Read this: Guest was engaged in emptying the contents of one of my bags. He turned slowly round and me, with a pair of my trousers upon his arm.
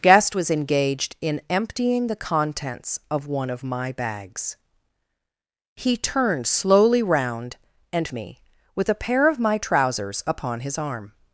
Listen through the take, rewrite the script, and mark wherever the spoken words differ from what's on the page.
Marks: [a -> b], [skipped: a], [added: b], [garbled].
Guest was engaged in emptying the contents of one of my bags. He turned slowly round and me, with a pair of my trousers upon his arm.